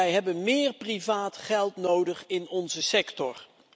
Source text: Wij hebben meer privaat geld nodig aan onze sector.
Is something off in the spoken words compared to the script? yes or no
yes